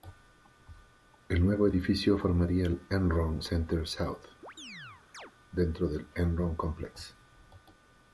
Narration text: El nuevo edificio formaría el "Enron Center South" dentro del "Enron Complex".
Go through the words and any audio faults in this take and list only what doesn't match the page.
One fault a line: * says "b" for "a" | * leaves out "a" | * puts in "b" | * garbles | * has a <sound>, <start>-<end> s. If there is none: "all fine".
* has a chirp, 4.4-5.3 s